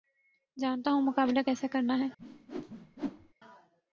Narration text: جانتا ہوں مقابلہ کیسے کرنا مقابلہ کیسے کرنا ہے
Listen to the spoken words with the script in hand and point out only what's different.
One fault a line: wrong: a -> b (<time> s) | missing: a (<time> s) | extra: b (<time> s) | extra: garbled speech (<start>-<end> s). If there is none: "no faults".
missing: مقابلہ کیسے کرنا (2.0 s)